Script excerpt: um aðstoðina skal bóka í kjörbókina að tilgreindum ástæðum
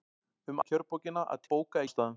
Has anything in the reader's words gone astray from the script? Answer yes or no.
yes